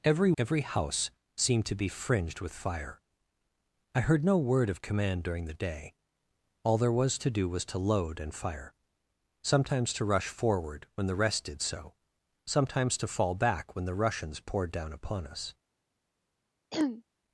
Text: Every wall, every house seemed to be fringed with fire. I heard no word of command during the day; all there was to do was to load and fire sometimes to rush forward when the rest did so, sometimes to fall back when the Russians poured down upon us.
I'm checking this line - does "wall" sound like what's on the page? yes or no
no